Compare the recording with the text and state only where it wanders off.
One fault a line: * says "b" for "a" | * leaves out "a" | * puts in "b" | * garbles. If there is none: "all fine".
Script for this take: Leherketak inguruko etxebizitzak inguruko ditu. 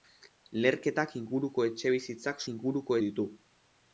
all fine